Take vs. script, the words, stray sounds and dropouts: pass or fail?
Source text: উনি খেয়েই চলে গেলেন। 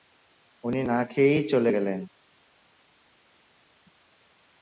fail